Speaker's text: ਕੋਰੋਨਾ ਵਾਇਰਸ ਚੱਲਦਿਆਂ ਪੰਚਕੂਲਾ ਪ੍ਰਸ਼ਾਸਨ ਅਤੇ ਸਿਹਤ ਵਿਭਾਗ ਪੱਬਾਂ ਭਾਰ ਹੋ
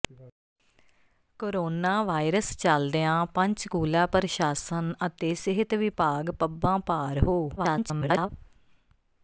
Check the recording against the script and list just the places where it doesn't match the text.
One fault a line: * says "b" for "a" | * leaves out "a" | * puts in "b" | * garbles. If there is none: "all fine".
* garbles